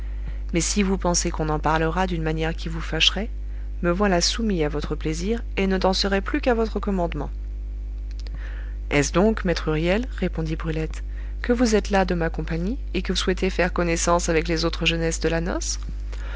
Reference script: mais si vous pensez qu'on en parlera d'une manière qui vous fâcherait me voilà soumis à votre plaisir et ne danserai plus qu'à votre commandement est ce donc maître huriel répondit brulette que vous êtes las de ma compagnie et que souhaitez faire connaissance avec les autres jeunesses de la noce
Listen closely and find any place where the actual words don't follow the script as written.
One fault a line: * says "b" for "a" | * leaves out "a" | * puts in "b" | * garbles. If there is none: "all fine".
all fine